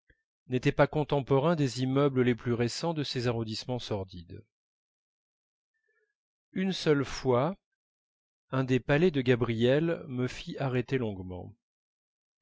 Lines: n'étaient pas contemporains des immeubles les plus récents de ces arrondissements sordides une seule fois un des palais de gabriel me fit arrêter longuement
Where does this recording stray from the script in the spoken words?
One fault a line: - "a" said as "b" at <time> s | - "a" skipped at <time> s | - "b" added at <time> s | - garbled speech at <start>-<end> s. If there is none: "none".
none